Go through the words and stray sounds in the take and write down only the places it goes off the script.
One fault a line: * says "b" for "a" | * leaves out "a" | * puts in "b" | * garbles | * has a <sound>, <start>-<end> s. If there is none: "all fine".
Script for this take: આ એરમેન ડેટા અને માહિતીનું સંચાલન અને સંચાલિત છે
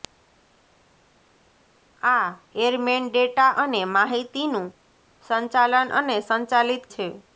all fine